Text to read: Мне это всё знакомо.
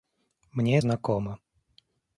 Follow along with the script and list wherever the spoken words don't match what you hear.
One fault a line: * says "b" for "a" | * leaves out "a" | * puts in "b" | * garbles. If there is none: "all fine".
* leaves out "это всё"